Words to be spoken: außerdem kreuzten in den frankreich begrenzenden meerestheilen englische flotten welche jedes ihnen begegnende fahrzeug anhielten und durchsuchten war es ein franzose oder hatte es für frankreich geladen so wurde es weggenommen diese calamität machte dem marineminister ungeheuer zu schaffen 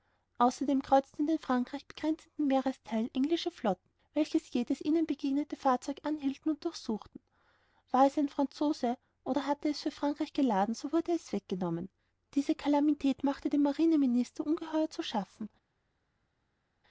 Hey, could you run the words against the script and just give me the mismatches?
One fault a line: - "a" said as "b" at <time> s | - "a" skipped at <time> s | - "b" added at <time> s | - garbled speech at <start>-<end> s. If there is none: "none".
none